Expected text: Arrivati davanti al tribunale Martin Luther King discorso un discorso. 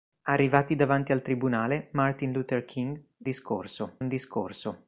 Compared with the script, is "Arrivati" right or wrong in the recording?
right